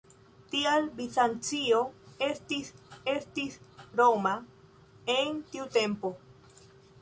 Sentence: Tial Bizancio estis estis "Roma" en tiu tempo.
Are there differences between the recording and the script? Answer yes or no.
no